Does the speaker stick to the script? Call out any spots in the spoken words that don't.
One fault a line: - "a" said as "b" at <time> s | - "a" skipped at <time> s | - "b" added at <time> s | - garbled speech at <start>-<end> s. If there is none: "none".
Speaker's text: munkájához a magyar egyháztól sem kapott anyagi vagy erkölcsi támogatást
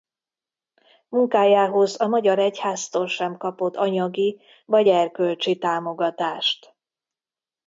none